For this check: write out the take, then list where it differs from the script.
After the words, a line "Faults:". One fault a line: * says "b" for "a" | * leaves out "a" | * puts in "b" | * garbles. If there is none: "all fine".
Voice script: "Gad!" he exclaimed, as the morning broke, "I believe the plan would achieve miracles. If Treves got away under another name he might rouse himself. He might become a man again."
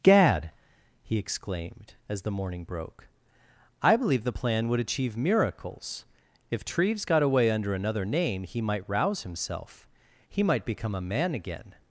"Gad!" he exclaimed, as the morning broke, "I believe the plan would achieve miracles. If Treves got away under another name he might rouse himself. He might become a man again."
Faults:
all fine